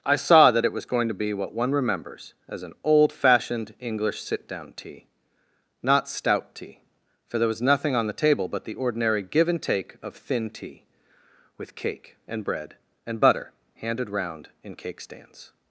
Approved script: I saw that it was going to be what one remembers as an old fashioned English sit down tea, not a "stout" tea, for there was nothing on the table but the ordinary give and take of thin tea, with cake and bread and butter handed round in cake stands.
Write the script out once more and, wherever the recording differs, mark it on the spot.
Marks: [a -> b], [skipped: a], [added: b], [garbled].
I saw that it was going to be what one remembers as an old fashioned English sit down tea, not [skipped: a] "stout" tea, for there was nothing on the table but the ordinary give and take of thin tea, with cake and bread and butter handed round in cake stands.